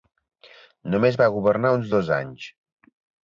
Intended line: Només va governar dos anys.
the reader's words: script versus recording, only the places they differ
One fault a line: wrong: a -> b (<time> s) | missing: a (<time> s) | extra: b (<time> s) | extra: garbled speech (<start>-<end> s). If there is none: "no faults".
extra: uns (1.8 s)